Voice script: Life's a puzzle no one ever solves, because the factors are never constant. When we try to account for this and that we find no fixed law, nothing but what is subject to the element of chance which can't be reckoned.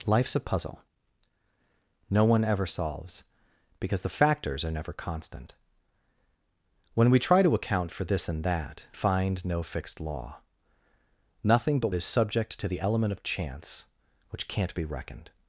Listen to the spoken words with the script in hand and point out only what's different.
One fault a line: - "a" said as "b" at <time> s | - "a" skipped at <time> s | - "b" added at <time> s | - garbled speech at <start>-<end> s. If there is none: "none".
- "we" skipped at 8.8 s
- "what" skipped at 11.9 s